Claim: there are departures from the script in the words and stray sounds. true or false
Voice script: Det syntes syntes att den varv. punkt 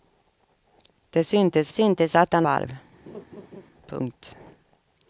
true